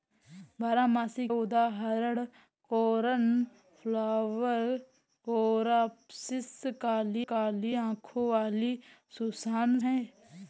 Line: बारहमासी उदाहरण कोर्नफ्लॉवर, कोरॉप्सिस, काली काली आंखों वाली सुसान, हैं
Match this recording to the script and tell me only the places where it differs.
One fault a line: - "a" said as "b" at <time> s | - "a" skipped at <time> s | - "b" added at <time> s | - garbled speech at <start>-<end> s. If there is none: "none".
none